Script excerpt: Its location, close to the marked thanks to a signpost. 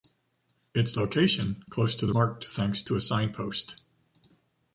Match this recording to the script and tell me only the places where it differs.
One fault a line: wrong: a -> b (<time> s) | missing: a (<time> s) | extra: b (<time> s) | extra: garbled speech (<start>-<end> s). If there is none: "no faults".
no faults